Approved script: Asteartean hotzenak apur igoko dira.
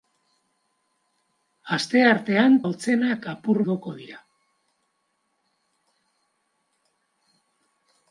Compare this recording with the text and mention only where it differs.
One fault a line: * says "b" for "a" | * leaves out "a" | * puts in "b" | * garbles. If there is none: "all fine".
all fine